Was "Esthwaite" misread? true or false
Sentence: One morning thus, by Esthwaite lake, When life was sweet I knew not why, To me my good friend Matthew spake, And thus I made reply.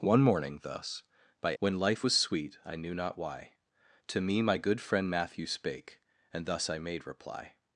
true